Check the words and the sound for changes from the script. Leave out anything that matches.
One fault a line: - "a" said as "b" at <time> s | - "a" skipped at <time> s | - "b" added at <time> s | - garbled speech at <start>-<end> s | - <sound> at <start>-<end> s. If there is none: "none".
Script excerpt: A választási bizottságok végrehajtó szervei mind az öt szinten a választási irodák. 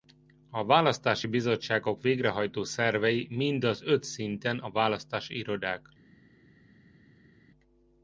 none